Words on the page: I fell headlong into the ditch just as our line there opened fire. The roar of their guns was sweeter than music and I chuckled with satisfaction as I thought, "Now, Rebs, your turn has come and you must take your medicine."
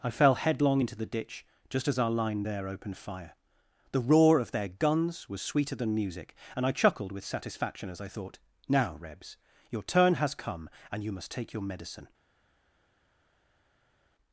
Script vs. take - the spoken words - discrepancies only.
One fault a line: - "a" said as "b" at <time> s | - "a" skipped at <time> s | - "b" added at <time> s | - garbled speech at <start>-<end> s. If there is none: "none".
none